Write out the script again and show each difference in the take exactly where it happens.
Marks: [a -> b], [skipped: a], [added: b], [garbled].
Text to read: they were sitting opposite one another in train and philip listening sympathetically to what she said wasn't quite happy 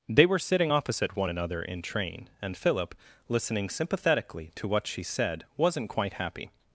they were sitting opposite one another in train and philip listening sympathetically to what she said wasn't quite happy